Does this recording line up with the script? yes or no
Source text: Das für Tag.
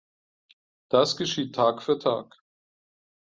no